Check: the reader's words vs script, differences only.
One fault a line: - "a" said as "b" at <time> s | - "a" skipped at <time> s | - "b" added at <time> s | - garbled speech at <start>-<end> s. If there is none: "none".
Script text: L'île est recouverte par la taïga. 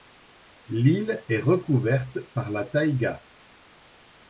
none